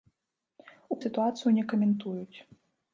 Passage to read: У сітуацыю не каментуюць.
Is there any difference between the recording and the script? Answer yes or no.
no